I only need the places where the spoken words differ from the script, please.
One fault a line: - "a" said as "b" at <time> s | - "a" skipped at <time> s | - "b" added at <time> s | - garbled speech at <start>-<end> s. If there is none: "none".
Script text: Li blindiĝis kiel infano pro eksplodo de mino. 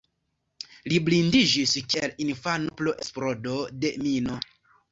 none